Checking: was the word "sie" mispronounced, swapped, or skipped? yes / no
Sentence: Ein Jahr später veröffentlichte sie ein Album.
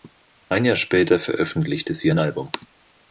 no